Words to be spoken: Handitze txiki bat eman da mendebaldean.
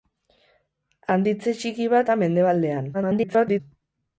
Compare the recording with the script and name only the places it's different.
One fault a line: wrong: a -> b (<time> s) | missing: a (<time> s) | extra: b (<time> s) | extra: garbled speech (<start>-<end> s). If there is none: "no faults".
missing: eman (2.1 s)
extra: garbled speech (2.9-3.6 s)